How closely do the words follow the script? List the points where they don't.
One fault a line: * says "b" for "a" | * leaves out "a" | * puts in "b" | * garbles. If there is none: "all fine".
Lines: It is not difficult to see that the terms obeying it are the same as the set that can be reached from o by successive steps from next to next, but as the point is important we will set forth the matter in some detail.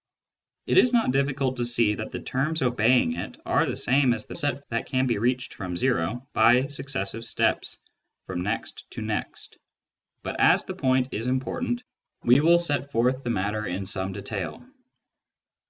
all fine